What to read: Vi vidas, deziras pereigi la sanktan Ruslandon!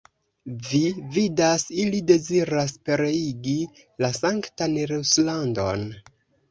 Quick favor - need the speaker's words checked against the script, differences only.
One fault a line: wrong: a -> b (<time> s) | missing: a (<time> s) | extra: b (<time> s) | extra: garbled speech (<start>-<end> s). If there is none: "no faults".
extra: ili (1.8 s)